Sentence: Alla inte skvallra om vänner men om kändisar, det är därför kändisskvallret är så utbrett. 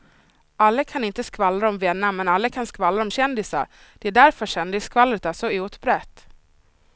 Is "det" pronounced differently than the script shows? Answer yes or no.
no